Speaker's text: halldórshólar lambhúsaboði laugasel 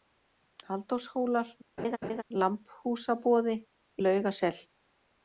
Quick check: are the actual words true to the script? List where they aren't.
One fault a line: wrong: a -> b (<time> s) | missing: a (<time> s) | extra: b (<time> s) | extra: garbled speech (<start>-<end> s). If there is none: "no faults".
no faults